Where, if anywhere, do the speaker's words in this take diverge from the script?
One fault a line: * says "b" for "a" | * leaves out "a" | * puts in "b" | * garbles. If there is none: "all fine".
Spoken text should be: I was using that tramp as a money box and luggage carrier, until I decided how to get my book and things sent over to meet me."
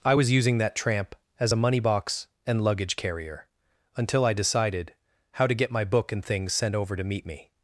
all fine